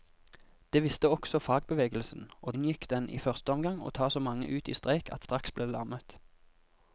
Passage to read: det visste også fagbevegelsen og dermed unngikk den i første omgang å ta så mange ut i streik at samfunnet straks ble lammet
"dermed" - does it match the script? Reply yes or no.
no